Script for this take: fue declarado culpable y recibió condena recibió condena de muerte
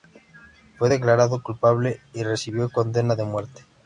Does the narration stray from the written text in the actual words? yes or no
yes